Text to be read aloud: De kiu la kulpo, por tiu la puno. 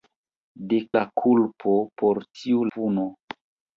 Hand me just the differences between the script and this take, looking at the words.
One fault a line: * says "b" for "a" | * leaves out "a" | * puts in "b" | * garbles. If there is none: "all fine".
* leaves out "kiu"
* leaves out "la"